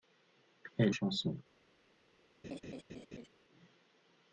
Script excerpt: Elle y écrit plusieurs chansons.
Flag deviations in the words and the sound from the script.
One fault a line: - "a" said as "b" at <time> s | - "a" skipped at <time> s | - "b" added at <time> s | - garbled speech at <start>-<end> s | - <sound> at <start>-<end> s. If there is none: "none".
- "y écrit plusieurs" skipped at 0.9 s
- laugh at 2.4-3.3 s